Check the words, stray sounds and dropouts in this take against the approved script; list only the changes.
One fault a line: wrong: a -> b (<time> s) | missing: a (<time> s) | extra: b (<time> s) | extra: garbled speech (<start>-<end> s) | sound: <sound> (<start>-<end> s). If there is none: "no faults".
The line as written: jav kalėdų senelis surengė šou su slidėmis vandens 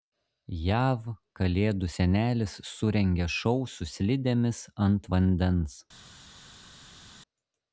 extra: ant (4.9 s)